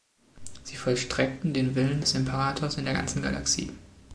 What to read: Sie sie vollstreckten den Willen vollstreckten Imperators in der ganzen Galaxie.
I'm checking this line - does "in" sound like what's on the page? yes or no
yes